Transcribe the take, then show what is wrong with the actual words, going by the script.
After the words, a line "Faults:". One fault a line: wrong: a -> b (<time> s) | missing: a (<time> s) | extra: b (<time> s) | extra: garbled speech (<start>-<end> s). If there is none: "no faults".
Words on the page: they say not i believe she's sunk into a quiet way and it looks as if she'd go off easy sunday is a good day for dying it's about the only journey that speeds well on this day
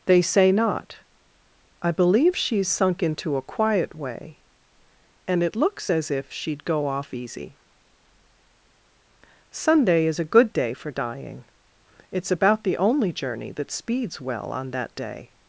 they say not i believe she's sunk into a quiet way and it looks as if she'd go off easy sunday is a good day for dying it's about the only journey that speeds well on that day
Faults:
wrong: this -> that (14.7 s)